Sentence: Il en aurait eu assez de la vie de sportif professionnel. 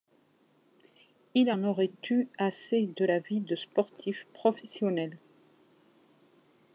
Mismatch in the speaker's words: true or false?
false